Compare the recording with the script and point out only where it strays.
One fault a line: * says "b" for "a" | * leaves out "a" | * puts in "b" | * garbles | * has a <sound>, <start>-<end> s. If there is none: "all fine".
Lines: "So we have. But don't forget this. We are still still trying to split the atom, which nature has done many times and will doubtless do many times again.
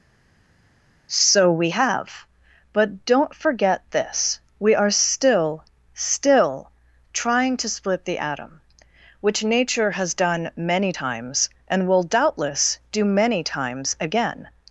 all fine